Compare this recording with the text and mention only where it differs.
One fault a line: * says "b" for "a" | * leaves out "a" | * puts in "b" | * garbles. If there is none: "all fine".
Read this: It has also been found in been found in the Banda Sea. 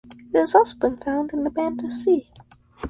* leaves out "been found in"